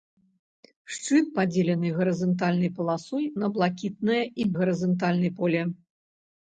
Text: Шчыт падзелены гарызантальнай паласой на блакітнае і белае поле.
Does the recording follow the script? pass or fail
fail